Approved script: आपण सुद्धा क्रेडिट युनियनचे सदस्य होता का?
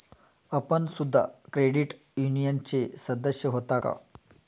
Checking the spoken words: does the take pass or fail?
pass